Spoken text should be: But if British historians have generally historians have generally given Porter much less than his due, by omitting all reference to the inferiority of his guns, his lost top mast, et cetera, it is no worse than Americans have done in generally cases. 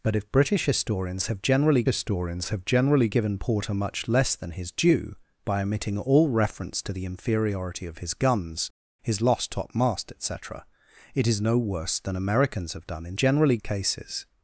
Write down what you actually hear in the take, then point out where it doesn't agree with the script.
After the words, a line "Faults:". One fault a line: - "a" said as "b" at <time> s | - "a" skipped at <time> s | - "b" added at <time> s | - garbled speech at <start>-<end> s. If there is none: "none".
But if British historians have generally historians have generally given Porter much less than his due, by omitting all reference to the inferiority of his guns, his lost top mast, et cetera, it is no worse than Americans have done in generally cases.
Faults:
none